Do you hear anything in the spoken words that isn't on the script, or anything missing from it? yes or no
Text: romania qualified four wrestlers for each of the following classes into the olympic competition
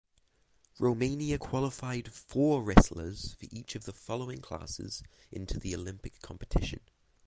no